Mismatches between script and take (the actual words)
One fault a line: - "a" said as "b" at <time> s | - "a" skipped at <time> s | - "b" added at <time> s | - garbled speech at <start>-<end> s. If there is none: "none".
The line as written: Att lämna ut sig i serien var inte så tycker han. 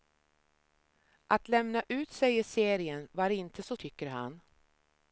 none